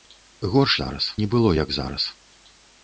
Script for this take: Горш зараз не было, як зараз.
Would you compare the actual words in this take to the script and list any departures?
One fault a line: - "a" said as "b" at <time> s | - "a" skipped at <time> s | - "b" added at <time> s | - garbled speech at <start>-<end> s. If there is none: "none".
none